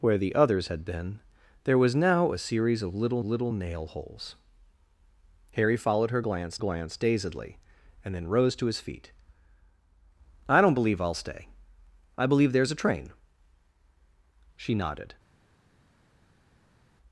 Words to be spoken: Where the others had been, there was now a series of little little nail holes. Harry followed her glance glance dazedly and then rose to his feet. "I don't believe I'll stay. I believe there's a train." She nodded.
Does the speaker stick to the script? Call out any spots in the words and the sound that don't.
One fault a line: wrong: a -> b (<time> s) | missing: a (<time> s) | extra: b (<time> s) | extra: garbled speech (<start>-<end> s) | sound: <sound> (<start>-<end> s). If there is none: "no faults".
no faults